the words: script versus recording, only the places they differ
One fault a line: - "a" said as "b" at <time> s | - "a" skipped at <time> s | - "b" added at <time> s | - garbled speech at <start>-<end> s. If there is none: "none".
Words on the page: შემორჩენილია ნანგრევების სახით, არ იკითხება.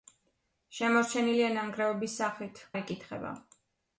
none